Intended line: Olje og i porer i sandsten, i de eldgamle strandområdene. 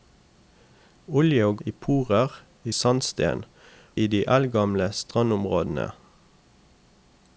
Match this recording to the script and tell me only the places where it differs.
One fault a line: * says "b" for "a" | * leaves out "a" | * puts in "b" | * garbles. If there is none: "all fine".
all fine